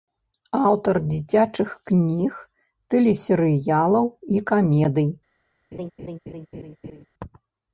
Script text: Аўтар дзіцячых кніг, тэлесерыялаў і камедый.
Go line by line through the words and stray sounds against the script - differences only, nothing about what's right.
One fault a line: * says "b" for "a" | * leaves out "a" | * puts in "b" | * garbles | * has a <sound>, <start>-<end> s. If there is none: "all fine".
* has a laugh, 5.7-7.1 s